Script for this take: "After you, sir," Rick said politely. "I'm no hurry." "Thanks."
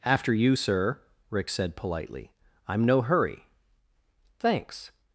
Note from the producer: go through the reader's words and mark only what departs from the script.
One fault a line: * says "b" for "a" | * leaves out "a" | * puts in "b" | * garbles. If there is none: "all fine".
all fine